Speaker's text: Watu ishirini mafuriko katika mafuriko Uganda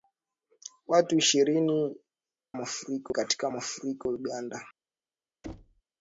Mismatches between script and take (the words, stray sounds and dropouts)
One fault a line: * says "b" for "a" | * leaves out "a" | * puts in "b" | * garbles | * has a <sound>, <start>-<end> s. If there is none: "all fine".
* has a thud, 5.4-5.8 s